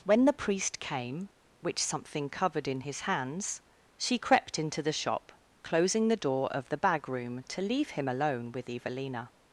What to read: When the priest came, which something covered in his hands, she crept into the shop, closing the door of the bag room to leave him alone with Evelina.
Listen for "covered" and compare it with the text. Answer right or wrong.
right